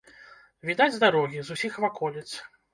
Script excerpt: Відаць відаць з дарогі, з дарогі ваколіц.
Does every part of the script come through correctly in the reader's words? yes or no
no